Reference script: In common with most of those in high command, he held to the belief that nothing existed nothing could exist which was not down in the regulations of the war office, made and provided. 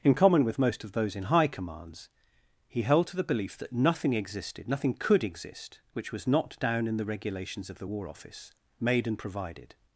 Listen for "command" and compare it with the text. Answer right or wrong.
wrong